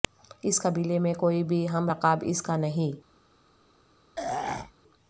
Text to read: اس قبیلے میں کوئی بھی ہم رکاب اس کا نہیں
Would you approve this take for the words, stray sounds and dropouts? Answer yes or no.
no